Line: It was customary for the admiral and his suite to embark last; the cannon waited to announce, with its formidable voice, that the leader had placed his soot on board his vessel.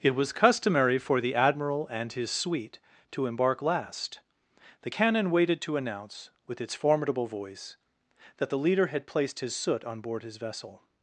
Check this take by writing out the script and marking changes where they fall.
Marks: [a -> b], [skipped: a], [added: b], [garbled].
It was customary for the admiral and his suite to embark last; the cannon waited to announce, with its formidable voice, that the leader had placed his soot on board his vessel.